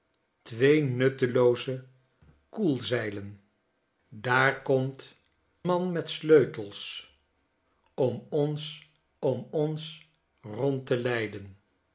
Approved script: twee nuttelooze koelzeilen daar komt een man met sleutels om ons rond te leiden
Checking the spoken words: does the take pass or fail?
fail